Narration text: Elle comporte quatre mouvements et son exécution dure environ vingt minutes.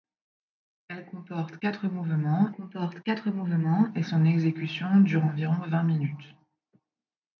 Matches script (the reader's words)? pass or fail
fail